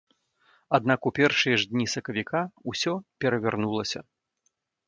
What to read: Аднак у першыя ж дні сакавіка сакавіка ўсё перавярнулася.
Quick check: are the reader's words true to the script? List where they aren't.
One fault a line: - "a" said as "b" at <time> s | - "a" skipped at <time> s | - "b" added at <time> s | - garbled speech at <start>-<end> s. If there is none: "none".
- "сакавіка" skipped at 2.4 s